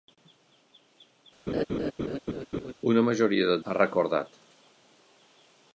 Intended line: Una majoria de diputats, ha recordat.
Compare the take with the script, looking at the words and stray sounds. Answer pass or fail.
fail